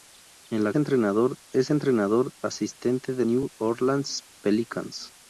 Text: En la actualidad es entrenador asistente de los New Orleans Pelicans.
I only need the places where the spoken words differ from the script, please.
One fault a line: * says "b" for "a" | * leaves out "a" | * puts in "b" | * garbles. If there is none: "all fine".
* says "entrenador" for "actualidad"
* leaves out "los"